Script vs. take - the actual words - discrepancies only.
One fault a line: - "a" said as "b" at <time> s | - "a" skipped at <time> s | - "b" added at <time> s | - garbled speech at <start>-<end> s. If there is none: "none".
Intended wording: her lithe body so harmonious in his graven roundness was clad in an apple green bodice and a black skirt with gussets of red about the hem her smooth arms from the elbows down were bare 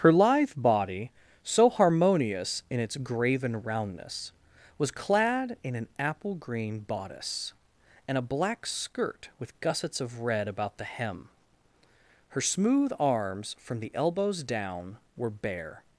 - "his" said as "its" at 2.8 s